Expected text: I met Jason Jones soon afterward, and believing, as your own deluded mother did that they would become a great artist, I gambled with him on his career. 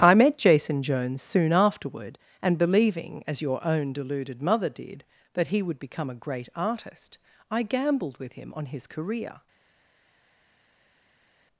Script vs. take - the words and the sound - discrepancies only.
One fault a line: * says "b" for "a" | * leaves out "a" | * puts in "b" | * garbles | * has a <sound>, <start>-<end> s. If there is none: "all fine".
* says "he" for "they"